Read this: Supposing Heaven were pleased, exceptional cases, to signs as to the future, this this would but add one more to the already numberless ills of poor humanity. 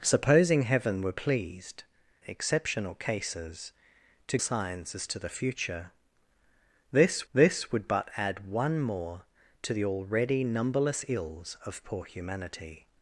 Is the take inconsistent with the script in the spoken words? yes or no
no